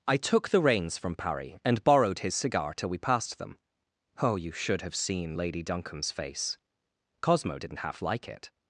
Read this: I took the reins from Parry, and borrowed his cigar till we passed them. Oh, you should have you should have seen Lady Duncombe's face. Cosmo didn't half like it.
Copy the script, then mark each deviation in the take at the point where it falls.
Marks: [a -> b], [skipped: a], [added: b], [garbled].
I took the reins from Parry, and borrowed his cigar till we passed them. Oh, you should have [skipped: you should have] seen Lady Duncombe's face. Cosmo didn't half like it.